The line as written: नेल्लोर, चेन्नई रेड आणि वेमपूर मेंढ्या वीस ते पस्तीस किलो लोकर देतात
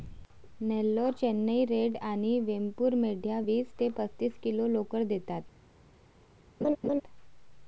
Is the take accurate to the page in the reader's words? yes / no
yes